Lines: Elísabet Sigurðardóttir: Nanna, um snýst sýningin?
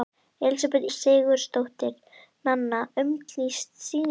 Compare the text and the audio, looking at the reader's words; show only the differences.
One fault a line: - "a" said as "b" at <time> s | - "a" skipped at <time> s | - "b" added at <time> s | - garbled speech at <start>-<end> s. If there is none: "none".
none